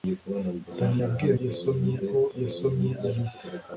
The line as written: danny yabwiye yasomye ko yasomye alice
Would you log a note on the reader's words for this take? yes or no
no